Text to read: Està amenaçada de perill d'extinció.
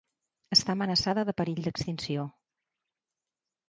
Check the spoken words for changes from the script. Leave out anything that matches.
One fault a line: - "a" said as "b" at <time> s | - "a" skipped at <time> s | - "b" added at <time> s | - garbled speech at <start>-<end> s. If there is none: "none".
none